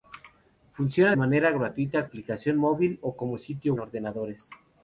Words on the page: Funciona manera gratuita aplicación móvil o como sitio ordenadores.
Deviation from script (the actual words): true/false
false